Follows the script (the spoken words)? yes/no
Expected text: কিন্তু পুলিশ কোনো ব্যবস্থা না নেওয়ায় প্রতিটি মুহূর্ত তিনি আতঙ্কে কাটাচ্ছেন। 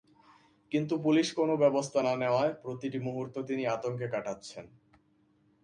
yes